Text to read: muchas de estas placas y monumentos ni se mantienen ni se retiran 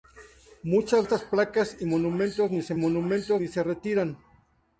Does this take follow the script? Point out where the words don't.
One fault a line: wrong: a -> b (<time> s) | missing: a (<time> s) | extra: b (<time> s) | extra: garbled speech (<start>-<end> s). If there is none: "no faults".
missing: de (1.1 s)
wrong: mantienen -> monumentos (2.8 s)